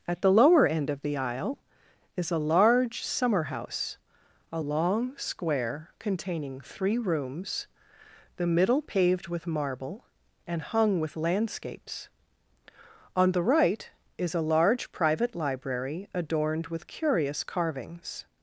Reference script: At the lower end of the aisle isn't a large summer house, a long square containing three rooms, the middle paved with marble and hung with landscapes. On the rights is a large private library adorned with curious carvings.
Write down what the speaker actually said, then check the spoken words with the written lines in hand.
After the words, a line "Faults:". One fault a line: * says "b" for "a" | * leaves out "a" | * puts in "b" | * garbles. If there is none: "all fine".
At the lower end of the aisle is a large summer house, a long square containing three rooms, the middle paved with marble and hung with landscapes. On the right is a large private library adorned with curious carvings.
Faults:
* says "is" for "isn't"
* says "right" for "rights"